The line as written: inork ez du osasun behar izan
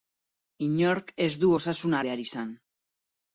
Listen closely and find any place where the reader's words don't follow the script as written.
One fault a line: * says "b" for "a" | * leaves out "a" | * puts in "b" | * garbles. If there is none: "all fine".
all fine